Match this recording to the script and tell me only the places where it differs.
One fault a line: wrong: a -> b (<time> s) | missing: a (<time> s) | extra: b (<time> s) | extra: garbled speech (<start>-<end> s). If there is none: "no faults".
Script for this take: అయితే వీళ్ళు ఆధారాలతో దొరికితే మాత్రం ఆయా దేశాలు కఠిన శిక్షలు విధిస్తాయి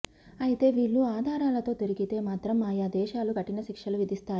no faults